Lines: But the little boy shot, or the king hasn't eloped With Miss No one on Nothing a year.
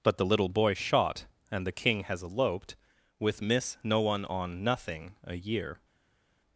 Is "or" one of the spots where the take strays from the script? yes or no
yes